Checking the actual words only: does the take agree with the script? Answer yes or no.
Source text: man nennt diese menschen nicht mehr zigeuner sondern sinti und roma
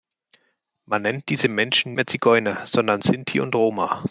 no